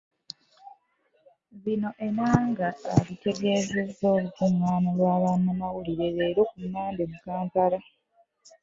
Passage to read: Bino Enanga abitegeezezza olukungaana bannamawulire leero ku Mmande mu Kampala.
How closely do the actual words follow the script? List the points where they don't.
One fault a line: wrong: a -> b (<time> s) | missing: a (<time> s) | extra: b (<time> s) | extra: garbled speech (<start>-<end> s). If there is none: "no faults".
extra: lwa (5.0 s)